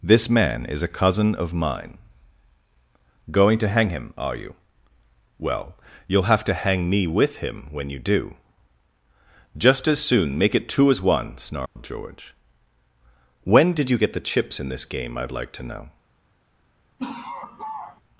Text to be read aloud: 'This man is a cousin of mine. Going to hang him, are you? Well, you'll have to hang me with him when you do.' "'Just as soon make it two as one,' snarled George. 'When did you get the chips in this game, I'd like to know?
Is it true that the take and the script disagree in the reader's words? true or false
false